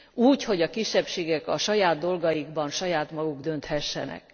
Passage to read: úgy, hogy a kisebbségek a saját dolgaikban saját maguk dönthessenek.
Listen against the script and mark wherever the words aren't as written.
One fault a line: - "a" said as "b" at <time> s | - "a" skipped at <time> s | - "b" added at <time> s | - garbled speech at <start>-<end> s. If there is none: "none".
none